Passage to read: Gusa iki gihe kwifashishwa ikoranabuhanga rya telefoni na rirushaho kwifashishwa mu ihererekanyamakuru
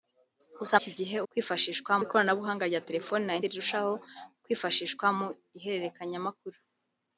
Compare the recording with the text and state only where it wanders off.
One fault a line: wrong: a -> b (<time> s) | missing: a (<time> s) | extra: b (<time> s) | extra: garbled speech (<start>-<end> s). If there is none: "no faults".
no faults